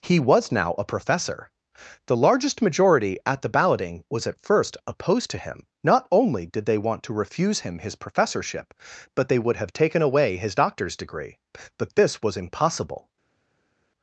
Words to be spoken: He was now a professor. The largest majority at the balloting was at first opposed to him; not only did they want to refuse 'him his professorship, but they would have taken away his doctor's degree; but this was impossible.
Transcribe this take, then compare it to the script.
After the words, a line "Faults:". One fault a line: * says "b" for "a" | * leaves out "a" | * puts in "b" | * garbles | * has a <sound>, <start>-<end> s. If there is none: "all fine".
He was now a professor. The largest majority at the balloting was at first opposed to him; not only did they want to refuse 'him his professorship, but they would have taken away his doctor's degree; but this was impossible.
Faults:
all fine